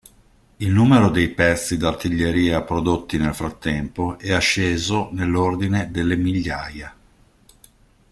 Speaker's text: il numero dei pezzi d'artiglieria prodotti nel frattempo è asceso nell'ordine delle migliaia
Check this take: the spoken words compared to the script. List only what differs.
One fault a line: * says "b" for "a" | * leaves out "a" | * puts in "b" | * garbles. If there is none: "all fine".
all fine